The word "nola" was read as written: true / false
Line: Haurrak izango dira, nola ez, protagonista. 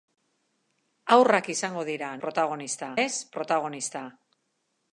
false